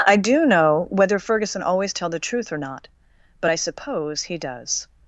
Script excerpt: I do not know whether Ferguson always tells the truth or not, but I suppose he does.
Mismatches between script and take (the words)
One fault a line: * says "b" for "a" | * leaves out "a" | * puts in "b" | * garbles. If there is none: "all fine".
* leaves out "not"
* says "tell" for "tells"